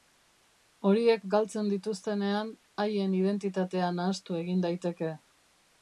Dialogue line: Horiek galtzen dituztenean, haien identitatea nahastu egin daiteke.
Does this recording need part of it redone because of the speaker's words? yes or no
no